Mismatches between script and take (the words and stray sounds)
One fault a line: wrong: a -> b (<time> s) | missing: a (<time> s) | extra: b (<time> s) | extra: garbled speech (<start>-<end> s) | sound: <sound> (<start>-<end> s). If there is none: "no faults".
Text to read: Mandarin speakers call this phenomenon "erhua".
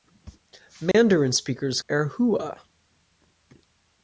sound: dropout (0.9-0.9 s)
missing: call this phenomenon (1.8 s)